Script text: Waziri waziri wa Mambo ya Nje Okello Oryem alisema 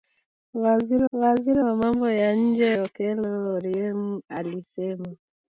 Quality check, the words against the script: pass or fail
pass